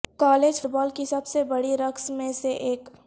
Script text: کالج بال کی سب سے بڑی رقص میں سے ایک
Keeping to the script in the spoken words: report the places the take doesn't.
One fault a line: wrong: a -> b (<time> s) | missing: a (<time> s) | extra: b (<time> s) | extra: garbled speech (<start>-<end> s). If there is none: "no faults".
no faults